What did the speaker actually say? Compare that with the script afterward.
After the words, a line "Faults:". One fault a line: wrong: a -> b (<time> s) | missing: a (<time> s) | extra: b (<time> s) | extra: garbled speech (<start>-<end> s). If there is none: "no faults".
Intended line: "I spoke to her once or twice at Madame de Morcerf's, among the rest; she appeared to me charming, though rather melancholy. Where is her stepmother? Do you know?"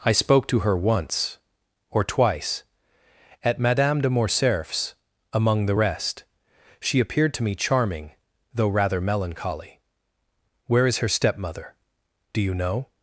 "I spoke to her once or twice at Madame de Morcerf's, among the rest; she appeared to me charming, though rather melancholy. Where is her stepmother? Do you know?"
Faults:
no faults